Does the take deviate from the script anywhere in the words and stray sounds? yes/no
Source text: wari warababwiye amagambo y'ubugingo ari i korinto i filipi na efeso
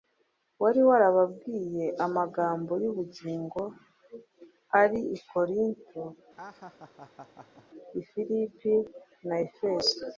yes